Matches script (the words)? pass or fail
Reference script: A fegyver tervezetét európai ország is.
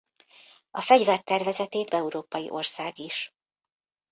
pass